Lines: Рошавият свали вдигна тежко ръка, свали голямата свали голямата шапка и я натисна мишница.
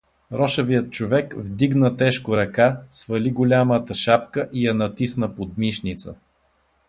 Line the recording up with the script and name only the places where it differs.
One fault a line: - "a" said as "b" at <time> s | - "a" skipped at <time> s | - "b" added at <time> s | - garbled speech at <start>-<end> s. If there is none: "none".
- "свали" said as "човек" at 0.9 s
- "свали голямата" skipped at 3.9 s
- "под" added at 5.4 s